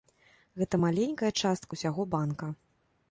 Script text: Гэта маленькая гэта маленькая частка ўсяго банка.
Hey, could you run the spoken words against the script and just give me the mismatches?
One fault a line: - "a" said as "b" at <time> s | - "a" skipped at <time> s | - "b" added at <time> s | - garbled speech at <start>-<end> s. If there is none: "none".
- "гэта маленькая" skipped at 1.3 s